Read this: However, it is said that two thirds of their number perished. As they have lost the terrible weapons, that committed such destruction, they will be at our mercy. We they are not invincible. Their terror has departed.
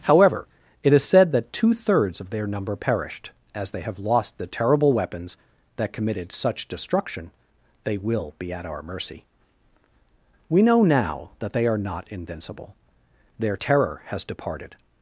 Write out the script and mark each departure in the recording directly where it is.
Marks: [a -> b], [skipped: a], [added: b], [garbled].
However, it is said that two thirds of their number perished. As they have lost the terrible weapons, that committed such destruction, they will be at our mercy. We [added: know now that] they are not invincible. Their terror has departed.